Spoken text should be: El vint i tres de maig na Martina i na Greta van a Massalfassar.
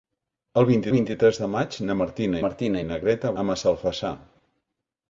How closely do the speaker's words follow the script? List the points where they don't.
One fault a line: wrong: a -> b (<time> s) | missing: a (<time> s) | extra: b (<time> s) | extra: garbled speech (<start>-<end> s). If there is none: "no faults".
extra: vint (0.9 s)
extra: Martina (2.5 s)
missing: van (3.4 s)